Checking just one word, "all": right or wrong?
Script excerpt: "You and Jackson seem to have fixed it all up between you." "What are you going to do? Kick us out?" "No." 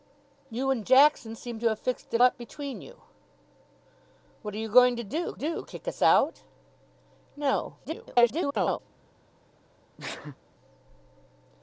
wrong